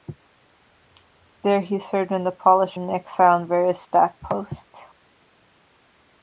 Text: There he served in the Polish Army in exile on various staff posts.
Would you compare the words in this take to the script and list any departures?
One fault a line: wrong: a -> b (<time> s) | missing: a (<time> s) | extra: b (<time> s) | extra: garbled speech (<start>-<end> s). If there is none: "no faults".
missing: Army (2.8 s)